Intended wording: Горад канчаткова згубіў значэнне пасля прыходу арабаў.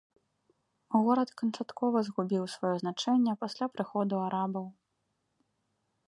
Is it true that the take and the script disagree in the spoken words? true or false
true